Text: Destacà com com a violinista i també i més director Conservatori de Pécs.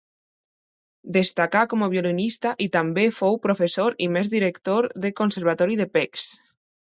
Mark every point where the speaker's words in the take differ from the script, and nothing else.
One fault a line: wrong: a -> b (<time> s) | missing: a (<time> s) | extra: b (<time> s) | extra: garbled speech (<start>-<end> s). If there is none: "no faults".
missing: com (1.9 s)
extra: fou professor (3.2 s)
extra: del (5.1 s)